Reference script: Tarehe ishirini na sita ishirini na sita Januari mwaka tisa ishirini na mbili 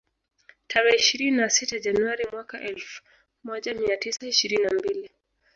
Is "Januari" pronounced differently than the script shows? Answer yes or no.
yes